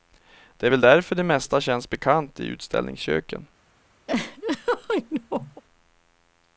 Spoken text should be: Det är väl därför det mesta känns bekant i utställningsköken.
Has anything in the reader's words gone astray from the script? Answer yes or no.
no